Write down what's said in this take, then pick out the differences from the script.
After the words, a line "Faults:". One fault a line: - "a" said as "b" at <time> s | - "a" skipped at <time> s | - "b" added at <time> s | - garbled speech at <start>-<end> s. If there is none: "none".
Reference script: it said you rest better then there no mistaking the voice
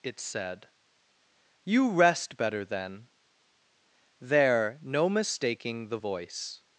it said you rest better then there no mistaking the voice
Faults:
none